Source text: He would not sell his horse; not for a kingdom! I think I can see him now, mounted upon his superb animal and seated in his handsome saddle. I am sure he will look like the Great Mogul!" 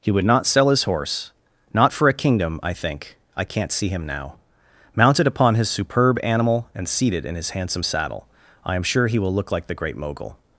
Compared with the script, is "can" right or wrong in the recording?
wrong